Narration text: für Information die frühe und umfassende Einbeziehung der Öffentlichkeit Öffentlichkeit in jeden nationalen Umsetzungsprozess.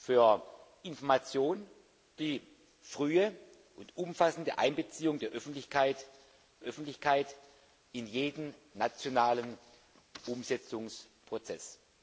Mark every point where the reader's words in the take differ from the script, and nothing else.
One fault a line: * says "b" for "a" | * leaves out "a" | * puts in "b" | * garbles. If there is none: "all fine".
all fine